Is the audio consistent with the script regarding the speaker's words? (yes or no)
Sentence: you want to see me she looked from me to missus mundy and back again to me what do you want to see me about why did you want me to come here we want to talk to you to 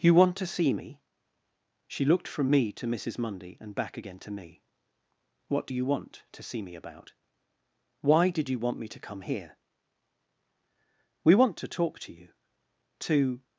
yes